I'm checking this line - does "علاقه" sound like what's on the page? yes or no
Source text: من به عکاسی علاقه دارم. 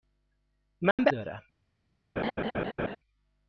no